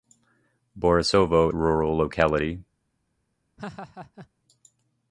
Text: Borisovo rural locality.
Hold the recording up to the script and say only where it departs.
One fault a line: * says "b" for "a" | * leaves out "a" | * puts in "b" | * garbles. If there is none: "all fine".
all fine